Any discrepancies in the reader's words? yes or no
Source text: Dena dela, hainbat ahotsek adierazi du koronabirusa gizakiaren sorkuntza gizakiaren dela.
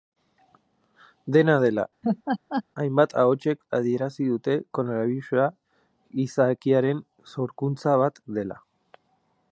yes